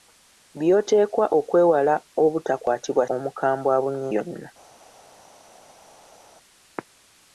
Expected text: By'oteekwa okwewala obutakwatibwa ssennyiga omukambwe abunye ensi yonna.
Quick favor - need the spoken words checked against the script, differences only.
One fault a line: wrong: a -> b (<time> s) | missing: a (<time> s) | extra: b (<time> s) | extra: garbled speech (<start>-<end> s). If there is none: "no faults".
missing: ssennyiga (3.0 s)
missing: ensi (4.0 s)